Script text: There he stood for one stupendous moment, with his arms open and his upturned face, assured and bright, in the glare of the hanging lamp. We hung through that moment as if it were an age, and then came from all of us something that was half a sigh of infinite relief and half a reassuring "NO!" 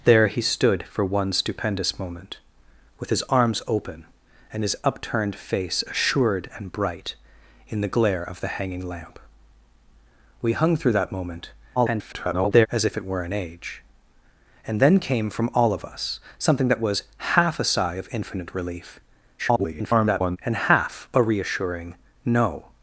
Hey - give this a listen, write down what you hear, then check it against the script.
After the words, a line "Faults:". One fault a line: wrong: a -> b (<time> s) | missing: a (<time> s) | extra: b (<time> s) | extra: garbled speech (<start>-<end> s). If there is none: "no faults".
There he stood for one stupendous moment, with his arms open and his upturned face, assured and bright, in the glare of the hanging lamp. We hung through that moment [garbled] as if it were an age, and then came from all of us something that was half a sigh of infinite relief [garbled] and half a reassuring "NO!"
Faults:
extra: garbled speech (11.8-12.7 s)
extra: garbled speech (19.4-20.4 s)